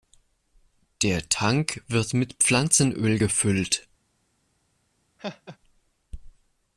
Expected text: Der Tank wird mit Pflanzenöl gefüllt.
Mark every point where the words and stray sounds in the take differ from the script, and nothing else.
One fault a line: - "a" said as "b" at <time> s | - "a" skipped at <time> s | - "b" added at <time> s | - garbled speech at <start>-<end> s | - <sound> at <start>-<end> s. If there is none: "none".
- laugh at 5.2-5.6 s